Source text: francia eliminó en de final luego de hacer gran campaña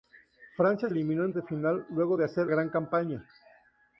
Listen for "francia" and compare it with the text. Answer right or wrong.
right